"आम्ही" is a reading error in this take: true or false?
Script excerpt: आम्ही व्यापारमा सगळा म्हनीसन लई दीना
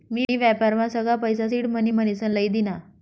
true